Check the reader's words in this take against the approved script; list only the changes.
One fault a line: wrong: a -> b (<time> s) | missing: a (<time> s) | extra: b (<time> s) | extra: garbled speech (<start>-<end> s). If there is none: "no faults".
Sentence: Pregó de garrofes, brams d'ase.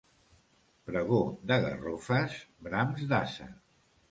no faults